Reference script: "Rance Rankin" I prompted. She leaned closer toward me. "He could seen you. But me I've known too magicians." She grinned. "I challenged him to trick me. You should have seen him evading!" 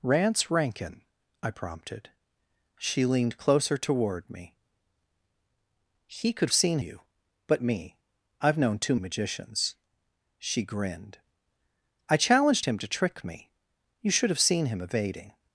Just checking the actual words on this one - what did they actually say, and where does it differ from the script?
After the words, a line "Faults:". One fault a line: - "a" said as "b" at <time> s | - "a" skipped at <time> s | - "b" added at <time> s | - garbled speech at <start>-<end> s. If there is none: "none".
"Rance Rankin" I prompted. She leaned closer toward me. "He could seen you. But me I've known too magicians." She grinned. "I challenged him to trick me. You should have seen him evading!"
Faults:
none